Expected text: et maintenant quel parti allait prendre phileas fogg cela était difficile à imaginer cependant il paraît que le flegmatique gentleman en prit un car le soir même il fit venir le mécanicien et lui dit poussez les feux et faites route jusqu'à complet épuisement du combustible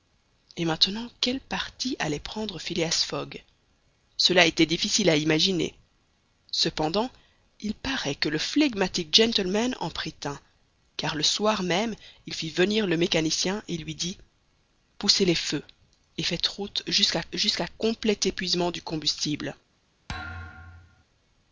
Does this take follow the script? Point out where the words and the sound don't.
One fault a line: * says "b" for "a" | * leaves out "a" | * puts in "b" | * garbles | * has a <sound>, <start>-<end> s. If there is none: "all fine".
* puts in "jusqu'à"
* has a thud, 20.1-21.0 s